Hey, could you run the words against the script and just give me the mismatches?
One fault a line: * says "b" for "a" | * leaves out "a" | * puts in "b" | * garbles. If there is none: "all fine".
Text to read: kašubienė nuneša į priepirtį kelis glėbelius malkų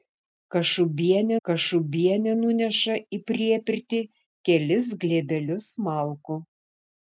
* puts in "kašubienė"